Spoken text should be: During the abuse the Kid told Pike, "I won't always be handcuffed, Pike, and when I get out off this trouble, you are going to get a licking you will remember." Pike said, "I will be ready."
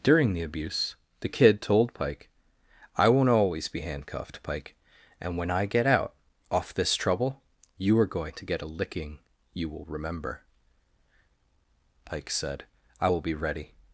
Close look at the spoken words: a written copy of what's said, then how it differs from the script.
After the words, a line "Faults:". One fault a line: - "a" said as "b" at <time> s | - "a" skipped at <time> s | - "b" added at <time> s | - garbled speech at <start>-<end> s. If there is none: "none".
During the abuse the Kid told Pike, "I won't always be handcuffed, Pike, and when I get out off this trouble, you are going to get a licking you will remember." Pike said, "I will be ready."
Faults:
none